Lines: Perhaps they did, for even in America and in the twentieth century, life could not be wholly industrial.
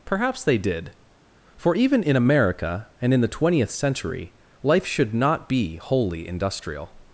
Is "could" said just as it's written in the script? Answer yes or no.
no